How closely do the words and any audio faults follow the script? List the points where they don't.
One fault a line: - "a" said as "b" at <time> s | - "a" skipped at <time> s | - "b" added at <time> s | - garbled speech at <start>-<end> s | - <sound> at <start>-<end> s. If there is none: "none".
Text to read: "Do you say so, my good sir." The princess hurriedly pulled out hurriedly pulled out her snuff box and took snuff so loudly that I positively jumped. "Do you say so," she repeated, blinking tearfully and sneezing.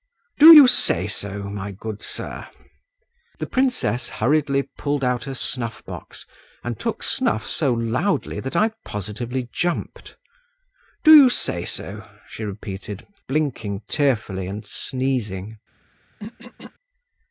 - "hurriedly pulled out" skipped at 5.2 s
- throat clearing at 16.2-16.7 s